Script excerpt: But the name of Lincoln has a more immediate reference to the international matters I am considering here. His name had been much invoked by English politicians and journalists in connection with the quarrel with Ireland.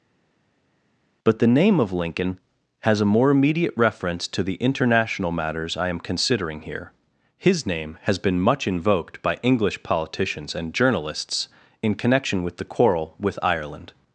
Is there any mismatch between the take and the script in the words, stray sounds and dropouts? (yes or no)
yes